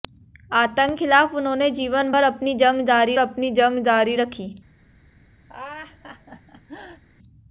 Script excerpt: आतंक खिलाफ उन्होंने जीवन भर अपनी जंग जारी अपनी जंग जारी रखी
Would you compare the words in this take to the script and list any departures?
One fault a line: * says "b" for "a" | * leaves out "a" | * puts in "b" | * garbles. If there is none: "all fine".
all fine